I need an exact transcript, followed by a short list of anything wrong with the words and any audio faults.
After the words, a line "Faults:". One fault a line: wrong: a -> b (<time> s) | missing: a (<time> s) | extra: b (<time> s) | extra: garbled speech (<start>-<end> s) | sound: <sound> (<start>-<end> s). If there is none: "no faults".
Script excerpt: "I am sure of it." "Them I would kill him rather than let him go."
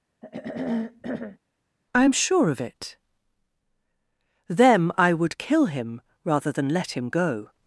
"I am sure of it." "Them I would kill him rather than let him go."
Faults:
sound: throat clearing (0.2-1.4 s)